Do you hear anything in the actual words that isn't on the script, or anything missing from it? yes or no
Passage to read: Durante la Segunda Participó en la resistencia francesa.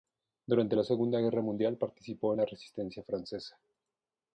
yes